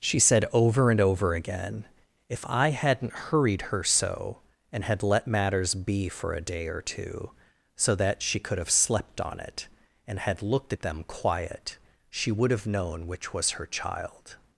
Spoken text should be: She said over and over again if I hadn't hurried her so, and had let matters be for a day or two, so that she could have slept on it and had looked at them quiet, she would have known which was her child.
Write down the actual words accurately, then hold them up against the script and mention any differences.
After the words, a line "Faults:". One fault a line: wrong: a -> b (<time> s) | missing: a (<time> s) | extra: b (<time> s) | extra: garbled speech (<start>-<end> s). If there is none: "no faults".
She said over and over again if I hadn't hurried her so, and had let matters be for a day or two, so that she could have slept on it and had looked at them quiet, she would have known which was her child.
Faults:
no faults